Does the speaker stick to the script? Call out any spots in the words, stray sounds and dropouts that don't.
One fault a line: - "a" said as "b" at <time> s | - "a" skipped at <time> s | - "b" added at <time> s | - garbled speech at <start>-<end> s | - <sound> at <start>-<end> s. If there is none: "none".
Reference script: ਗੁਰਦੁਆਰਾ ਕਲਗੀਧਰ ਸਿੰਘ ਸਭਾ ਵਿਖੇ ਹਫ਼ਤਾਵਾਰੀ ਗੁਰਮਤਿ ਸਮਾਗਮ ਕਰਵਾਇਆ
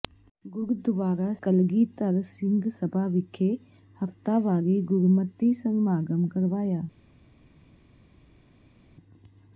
none